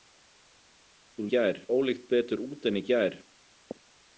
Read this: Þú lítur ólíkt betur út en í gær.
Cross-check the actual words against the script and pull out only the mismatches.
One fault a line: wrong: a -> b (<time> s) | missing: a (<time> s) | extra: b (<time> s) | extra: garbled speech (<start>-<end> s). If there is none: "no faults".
wrong: lítur -> gær (1.3 s)